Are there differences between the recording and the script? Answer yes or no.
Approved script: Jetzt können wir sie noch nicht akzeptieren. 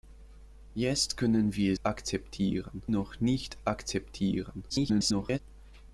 yes